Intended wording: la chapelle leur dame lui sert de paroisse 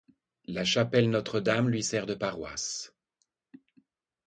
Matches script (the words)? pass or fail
fail